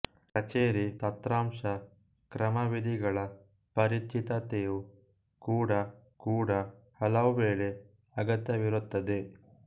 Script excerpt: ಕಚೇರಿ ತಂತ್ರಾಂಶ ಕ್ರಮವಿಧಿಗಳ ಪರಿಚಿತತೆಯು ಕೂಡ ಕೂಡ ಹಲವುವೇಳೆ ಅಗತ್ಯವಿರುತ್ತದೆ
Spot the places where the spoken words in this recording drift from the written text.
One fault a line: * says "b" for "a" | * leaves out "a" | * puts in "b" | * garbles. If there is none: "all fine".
all fine